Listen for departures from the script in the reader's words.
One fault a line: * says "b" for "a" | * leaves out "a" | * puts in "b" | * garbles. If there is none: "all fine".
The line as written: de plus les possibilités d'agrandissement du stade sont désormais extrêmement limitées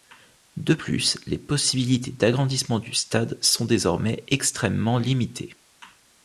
all fine